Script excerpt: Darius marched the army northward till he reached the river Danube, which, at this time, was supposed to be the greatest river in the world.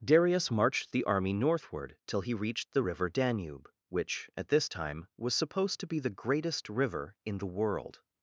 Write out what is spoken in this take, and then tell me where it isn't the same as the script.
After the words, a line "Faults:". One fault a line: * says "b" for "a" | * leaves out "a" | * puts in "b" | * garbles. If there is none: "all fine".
Darius marched the army northward till he reached the river Danube, which, at this time, was supposed to be the greatest river in the world.
Faults:
all fine